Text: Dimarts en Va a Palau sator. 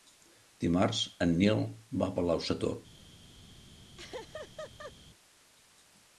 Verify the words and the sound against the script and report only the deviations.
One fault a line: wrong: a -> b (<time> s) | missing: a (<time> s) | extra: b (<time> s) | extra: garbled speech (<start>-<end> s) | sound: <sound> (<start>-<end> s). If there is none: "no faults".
extra: Nil (1.4 s)
sound: laugh (4.0-4.9 s)